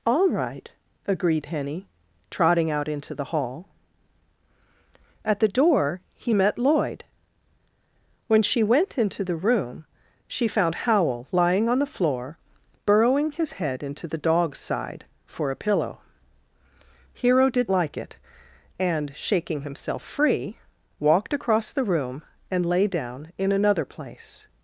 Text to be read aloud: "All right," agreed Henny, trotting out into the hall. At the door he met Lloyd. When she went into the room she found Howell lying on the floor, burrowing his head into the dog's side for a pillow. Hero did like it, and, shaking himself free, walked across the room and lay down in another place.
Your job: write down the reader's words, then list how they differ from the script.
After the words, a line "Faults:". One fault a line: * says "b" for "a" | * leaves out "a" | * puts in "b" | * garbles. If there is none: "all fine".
"All right," agreed Henny, trotting out into the hall. At the door he met Lloyd. When she went into the room she found Howell lying on the floor, burrowing his head into the dog's side for a pillow. Hero did like it, and, shaking himself free, walked across the room and lay down in another place.
Faults:
all fine